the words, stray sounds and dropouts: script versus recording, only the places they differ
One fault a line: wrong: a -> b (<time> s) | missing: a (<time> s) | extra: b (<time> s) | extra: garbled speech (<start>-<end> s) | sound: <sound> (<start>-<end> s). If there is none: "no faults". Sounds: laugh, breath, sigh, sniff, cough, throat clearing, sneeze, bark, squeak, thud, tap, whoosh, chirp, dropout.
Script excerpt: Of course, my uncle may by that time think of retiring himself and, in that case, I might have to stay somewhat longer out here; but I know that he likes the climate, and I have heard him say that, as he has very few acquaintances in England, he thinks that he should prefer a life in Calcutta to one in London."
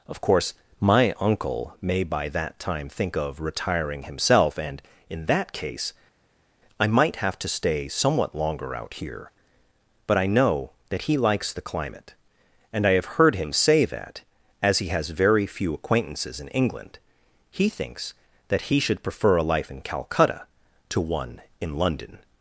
no faults